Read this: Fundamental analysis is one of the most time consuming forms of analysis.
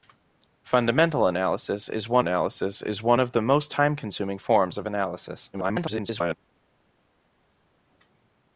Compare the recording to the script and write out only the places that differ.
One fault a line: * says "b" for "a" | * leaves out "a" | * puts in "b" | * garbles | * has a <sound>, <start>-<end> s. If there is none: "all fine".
* puts in "analysis is one"
* garbles